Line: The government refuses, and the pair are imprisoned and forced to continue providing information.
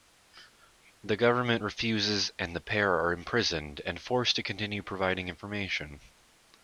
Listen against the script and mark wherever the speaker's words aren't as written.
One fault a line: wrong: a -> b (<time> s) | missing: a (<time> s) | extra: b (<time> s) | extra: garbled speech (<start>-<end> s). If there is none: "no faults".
no faults